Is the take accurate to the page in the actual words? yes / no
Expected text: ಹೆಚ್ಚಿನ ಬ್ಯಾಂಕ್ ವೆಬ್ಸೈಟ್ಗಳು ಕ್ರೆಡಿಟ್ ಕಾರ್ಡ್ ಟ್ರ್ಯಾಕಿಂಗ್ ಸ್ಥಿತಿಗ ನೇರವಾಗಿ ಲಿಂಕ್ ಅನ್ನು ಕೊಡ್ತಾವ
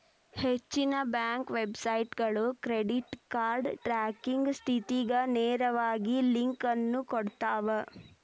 yes